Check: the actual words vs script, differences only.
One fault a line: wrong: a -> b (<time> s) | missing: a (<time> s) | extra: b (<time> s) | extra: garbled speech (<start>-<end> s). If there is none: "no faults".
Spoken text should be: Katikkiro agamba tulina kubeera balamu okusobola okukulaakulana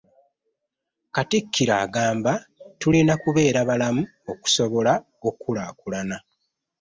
no faults